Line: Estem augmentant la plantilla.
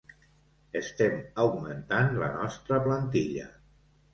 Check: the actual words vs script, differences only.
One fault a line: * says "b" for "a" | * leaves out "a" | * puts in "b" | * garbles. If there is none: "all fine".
* puts in "nostra"